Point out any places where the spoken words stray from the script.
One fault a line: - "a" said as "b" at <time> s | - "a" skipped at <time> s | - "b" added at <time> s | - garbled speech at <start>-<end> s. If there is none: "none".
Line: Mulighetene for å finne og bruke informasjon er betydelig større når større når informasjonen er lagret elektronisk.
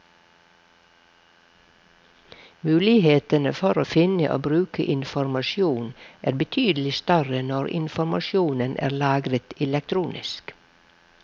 - "større når" skipped at 7.7 s